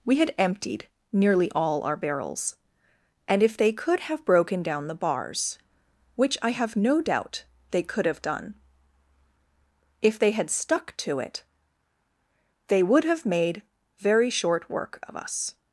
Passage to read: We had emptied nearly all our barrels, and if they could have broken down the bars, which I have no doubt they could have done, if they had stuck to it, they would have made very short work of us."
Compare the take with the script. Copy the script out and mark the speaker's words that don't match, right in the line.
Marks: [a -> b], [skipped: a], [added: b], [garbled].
We had emptied nearly all our barrels, and if they could have broken down the bars, which I have no doubt they could have done, if they had stuck to it, they would have made very short work of us."